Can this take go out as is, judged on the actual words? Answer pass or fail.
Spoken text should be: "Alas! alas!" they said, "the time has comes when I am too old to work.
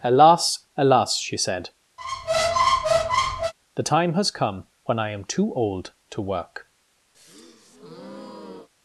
fail